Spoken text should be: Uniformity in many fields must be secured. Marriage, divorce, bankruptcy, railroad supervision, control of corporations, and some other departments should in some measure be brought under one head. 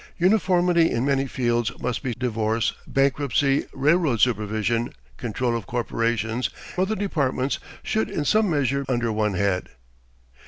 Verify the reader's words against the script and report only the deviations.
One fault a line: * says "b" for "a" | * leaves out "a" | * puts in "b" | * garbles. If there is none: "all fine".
* leaves out "secured Marriage"
* leaves out "and some"
* leaves out "be brought"